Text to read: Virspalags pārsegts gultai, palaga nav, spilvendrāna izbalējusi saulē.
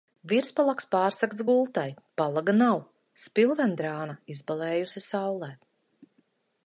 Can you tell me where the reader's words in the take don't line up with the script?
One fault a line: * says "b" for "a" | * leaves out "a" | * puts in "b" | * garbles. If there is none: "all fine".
all fine